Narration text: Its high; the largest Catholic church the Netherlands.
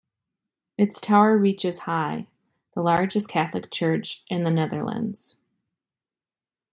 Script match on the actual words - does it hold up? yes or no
no